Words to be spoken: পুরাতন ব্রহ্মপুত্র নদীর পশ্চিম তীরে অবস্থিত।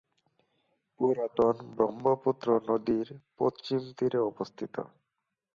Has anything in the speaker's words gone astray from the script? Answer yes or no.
no